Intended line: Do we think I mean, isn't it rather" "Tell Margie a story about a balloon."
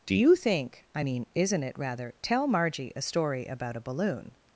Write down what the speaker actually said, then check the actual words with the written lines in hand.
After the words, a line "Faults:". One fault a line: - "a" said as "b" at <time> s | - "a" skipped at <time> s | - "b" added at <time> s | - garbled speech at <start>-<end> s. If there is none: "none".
Do you think I mean, isn't it rather" "Tell Margie a story about a balloon."
Faults:
- "we" said as "you" at 0.1 s